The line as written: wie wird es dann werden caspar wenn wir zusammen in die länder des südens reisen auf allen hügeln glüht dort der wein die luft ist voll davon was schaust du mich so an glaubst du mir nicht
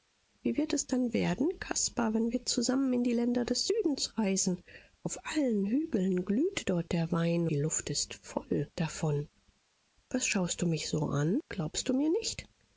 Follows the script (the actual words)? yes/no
yes